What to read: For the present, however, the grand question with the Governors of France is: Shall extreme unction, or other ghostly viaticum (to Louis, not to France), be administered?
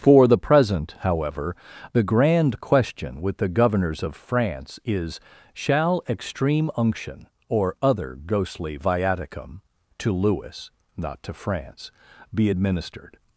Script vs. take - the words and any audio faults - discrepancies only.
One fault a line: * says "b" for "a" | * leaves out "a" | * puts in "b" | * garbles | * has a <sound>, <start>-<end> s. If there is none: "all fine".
all fine